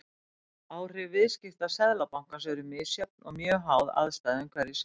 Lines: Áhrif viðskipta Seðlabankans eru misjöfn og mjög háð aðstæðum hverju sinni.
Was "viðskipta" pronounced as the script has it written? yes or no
yes